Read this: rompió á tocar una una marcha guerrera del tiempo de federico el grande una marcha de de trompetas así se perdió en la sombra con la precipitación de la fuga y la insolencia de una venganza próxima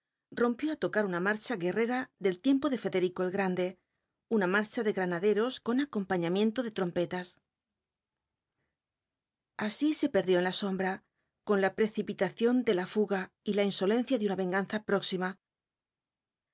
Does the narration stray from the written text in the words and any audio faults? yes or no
yes